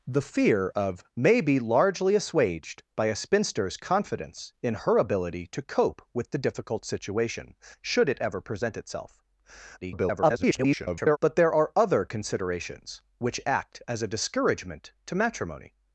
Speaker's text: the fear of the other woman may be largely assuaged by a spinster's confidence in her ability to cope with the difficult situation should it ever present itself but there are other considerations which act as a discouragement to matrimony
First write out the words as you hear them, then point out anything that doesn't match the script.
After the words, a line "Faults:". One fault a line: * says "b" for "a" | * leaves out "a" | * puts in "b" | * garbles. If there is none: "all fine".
the fear of may be largely assuaged by a spinster's confidence in her ability to cope with the difficult situation should it ever present itself [garbled] but there are other considerations which act as a discouragement to matrimony
Faults:
* leaves out "the other woman"
* garbles